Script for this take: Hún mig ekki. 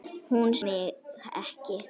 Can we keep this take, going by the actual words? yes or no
yes